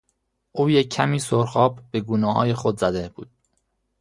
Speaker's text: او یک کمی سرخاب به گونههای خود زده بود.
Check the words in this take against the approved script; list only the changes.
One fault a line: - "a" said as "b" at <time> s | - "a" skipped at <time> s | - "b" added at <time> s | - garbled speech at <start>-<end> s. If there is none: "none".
none